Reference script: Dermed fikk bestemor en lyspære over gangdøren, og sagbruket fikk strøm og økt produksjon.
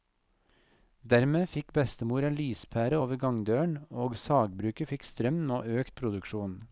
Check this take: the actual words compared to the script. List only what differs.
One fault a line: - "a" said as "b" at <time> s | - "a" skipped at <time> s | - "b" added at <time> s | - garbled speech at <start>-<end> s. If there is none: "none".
none